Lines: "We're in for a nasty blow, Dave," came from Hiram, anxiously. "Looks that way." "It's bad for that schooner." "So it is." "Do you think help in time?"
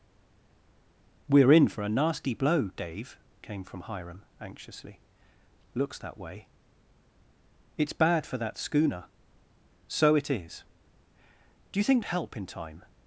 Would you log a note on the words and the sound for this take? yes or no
no